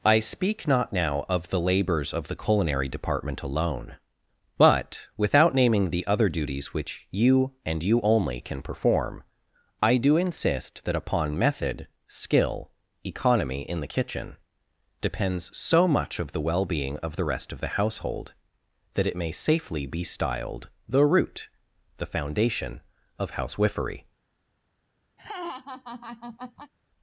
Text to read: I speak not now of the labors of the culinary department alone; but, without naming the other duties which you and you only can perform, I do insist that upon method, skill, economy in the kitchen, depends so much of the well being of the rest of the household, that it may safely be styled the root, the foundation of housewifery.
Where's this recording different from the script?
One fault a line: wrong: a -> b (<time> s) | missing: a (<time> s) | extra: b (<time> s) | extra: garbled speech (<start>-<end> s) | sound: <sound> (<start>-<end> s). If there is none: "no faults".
sound: laugh (25.2-26.7 s)